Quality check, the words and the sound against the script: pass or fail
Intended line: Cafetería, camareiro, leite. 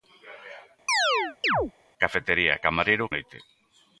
fail